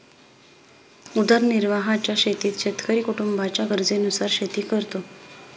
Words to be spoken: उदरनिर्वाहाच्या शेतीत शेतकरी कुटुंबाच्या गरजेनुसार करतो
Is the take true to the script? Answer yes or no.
no